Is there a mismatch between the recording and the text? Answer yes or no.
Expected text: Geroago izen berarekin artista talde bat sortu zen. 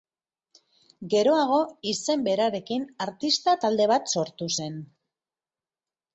no